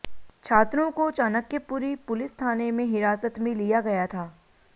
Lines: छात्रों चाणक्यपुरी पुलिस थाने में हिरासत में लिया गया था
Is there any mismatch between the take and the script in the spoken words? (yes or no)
yes